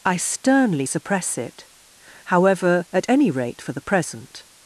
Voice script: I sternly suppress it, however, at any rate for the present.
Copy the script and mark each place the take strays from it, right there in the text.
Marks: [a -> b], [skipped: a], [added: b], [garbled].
I sternly suppress it, however, at any rate for the present.